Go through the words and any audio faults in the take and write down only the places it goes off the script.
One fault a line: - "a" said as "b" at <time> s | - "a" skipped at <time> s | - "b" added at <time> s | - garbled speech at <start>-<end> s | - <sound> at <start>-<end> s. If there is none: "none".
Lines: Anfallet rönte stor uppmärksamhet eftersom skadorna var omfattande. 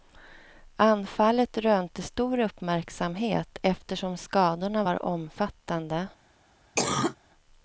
- cough at 6.8-7.2 s